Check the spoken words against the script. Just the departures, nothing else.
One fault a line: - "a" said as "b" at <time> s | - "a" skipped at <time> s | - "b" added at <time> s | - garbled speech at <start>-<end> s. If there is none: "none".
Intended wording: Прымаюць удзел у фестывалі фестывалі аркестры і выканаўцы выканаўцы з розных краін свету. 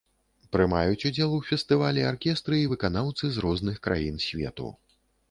- "фестывалі" skipped at 2.0 s
- "выканаўцы" skipped at 3.2 s